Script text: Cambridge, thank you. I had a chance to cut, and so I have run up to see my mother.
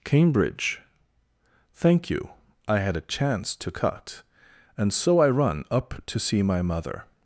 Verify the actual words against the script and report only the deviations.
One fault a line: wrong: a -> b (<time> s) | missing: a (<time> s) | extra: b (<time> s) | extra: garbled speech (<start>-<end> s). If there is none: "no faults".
missing: have (5.3 s)